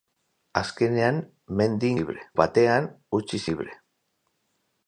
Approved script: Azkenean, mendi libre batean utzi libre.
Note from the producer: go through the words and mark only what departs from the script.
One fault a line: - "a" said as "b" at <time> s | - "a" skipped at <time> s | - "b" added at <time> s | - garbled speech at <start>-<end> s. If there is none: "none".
none